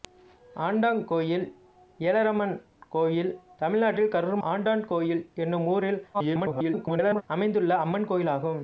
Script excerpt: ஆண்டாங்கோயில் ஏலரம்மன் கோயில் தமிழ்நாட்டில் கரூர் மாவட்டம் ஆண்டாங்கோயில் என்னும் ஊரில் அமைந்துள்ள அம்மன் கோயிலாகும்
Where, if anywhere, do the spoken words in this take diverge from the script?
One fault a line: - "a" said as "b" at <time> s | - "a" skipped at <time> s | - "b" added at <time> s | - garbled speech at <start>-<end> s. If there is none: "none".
- "மாவட்டம்" skipped at 4.4 s
- garbled speech at 6.1-7.2 s